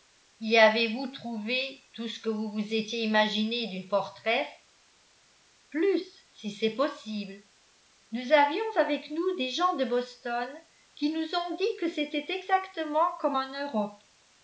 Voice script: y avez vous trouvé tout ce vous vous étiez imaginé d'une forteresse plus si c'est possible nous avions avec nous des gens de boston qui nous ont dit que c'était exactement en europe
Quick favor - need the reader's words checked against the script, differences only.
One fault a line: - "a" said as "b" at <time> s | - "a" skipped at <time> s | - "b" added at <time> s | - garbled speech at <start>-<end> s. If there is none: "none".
- "que" added at 2.2 s
- "comme" added at 13.2 s